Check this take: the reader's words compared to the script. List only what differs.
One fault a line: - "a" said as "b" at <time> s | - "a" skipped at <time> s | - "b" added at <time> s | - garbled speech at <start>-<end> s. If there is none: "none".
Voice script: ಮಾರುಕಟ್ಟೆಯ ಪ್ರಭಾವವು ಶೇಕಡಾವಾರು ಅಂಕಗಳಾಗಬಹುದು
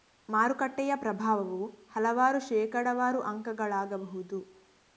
- "ಹಲವಾರು" added at 1.9 s